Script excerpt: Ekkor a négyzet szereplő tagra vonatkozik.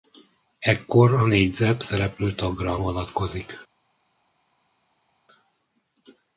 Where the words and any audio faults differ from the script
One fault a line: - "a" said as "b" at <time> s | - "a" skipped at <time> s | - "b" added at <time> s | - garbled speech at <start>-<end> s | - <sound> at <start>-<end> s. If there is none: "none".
none